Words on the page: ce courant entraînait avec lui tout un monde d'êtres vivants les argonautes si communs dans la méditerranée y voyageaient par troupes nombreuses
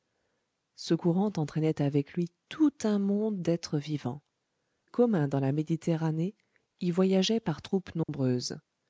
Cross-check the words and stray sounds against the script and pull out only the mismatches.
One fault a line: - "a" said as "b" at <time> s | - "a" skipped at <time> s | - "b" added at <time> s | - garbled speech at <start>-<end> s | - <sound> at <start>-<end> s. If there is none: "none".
- "les argonautes si" skipped at 4.2 s
- dropout at 8.0-8.1 s